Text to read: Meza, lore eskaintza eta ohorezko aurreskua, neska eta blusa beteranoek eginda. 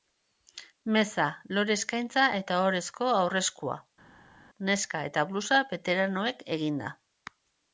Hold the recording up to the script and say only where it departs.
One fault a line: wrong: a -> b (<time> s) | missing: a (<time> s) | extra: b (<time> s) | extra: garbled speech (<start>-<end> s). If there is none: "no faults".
no faults